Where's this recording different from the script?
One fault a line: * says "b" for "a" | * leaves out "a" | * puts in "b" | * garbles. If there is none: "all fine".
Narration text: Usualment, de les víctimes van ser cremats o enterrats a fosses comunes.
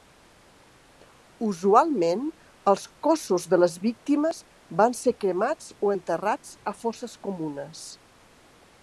* puts in "els cossos"